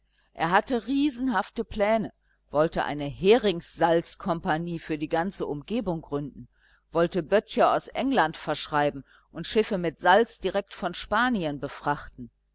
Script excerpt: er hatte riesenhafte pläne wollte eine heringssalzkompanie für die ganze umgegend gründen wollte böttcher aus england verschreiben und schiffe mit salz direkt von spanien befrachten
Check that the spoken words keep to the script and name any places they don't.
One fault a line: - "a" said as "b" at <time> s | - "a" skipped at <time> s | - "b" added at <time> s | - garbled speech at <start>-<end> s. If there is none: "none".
none